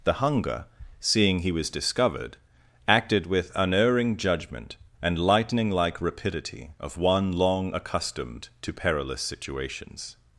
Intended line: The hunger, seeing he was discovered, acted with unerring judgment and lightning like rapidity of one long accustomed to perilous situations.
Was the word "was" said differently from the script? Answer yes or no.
no